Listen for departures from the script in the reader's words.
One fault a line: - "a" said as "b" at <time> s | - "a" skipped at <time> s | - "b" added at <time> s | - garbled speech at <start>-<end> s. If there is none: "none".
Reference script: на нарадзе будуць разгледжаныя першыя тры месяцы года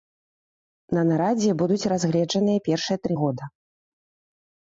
- "месяцы" skipped at 3.1 s